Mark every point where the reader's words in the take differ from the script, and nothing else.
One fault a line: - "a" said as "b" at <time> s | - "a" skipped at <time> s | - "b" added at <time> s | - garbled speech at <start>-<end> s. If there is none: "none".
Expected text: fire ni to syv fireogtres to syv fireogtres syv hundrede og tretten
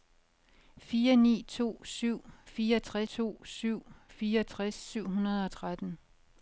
none